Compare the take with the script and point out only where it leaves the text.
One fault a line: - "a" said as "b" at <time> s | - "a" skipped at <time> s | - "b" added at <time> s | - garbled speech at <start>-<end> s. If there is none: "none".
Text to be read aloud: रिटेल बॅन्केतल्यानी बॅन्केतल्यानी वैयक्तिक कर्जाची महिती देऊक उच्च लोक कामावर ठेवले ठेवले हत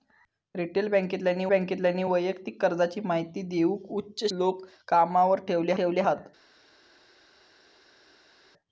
none